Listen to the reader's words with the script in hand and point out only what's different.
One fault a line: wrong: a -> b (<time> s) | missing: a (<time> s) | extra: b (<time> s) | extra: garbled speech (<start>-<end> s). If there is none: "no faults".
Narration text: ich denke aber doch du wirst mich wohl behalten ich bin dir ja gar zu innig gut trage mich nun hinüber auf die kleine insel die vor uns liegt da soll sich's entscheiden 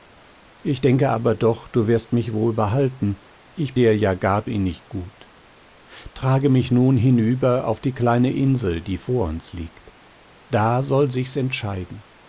missing: bin (3.8 s)
missing: zu (4.5 s)